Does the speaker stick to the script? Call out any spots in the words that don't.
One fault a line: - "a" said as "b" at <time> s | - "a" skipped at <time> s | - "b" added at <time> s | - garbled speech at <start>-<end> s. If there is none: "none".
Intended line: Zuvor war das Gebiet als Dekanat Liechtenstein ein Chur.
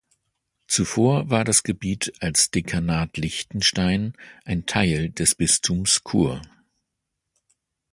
- "Teil des Bistums" added at 4.7 s